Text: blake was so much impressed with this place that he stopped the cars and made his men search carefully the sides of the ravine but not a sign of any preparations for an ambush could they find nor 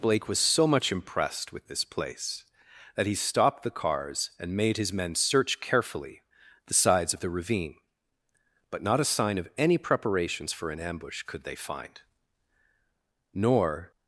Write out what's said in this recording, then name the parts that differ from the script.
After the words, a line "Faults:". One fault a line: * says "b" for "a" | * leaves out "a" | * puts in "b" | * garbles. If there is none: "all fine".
blake was so much impressed with this place that he stopped the cars and made his men search carefully the sides of the ravine but not a sign of any preparations for an ambush could they find nor
Faults:
all fine